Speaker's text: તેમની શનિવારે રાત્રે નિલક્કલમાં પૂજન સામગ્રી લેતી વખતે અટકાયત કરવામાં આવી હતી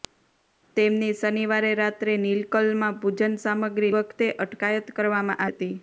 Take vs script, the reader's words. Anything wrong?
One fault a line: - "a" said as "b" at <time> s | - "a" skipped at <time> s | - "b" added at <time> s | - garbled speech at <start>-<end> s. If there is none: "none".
- "લેતી" skipped at 3.9 s
- "આવી" skipped at 5.5 s